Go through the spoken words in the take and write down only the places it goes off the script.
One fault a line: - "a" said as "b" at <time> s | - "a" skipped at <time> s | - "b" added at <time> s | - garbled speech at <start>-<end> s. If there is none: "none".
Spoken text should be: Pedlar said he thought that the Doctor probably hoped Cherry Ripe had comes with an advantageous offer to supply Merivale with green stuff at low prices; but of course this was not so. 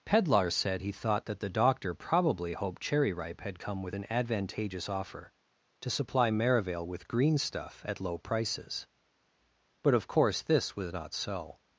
- "comes" said as "come" at 3.6 s